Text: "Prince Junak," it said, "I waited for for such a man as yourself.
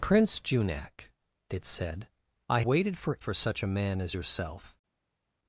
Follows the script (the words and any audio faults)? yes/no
yes